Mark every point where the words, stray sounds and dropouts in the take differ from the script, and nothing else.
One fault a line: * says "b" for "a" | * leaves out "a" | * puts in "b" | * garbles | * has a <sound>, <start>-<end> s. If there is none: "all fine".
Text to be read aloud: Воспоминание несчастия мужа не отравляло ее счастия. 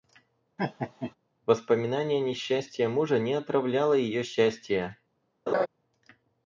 * has a laugh, 0.6-1.2 s
* has a laugh, 5.5-5.7 s